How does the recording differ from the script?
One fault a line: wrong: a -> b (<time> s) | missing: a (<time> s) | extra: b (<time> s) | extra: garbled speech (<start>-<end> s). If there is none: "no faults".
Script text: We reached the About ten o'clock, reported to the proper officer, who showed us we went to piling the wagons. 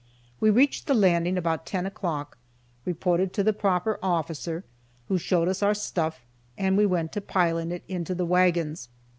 extra: Landing (0.9 s)
extra: our stuff and (5.6 s)
extra: it into (7.7 s)